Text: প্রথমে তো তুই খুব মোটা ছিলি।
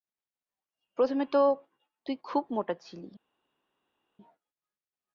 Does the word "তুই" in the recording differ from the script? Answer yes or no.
no